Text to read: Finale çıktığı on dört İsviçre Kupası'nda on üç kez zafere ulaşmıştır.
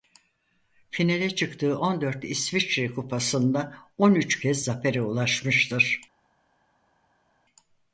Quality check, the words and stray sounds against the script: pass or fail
pass